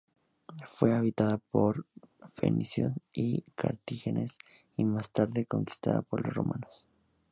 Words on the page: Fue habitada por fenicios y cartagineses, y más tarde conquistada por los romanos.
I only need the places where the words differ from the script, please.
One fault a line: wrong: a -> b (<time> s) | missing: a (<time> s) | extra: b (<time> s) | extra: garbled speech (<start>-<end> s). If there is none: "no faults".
no faults